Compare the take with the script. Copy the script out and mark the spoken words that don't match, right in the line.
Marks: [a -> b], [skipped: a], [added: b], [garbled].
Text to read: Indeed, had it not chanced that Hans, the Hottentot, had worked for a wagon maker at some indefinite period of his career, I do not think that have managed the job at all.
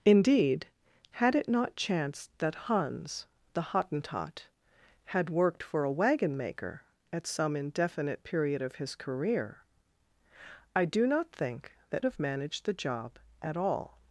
Indeed, had it not chanced that Hans, the Hottentot, had worked for a wagon maker at some indefinite period of his career, I do not think that have managed the job at all.